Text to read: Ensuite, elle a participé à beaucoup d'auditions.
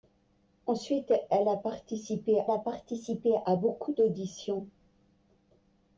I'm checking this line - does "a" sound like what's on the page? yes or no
yes